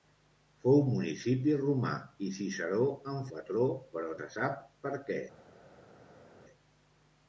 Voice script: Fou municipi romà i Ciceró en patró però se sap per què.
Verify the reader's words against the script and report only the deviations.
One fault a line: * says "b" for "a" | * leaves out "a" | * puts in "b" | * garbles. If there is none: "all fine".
all fine